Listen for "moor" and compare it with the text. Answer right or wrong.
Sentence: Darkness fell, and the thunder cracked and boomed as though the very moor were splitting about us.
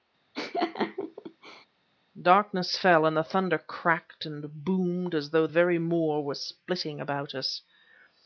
right